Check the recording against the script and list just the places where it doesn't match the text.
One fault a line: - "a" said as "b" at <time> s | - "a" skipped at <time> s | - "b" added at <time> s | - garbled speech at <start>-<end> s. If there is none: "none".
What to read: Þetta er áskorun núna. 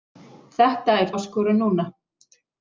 none